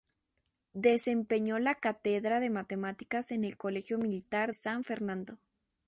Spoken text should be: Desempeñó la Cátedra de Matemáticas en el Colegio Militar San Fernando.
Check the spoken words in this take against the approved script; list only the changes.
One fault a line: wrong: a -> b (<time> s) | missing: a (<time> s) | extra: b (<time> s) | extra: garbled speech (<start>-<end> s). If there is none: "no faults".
no faults